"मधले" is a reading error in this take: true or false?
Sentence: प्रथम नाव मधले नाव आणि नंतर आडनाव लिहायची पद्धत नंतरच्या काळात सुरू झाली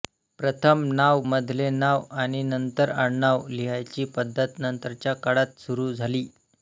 false